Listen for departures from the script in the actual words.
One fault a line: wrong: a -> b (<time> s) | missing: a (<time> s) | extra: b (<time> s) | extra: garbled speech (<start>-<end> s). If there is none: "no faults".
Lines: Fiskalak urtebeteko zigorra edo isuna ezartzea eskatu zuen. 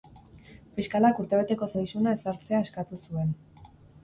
missing: zigorra (1.7 s)